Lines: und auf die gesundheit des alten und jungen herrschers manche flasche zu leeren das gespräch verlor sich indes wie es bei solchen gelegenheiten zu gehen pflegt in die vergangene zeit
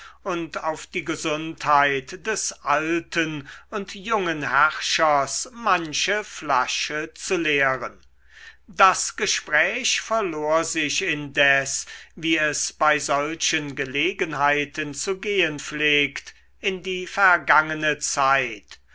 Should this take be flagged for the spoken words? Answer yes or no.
no